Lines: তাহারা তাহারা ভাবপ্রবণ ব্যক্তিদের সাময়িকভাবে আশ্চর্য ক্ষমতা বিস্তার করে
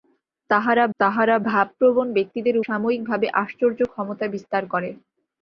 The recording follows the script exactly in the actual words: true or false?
true